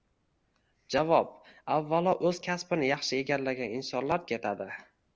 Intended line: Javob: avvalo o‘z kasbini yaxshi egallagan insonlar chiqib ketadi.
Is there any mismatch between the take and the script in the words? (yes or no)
yes